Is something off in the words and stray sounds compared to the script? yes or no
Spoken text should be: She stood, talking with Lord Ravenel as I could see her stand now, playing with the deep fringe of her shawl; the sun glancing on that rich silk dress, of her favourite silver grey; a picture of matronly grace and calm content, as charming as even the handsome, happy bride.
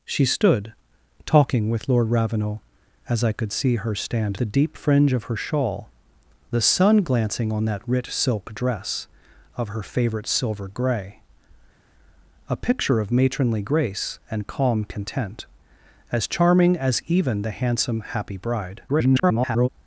yes